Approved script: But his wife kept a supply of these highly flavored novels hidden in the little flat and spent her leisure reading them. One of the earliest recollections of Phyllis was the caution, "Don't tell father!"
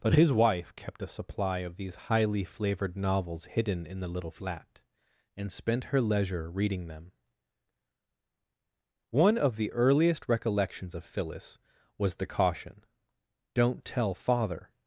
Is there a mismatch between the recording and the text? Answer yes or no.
no